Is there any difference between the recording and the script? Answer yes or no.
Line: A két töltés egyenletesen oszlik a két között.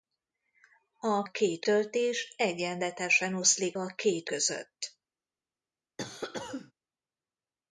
no